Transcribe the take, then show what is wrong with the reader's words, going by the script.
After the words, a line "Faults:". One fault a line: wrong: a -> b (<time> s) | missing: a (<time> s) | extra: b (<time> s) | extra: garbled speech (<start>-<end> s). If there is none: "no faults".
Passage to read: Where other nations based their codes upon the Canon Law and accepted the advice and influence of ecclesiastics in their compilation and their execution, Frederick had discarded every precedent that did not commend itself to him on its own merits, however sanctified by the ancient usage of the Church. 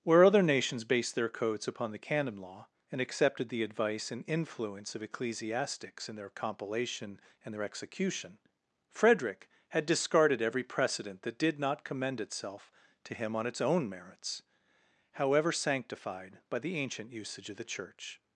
Where other nations based their codes upon the Canon Law and accepted the advice and influence of ecclesiastics in their compilation and their execution, Frederick had discarded every precedent that did not commend itself to him on its own merits, however sanctified by the ancient usage of the Church.
Faults:
no faults